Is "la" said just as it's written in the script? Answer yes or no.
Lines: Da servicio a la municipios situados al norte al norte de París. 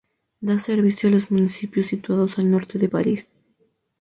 no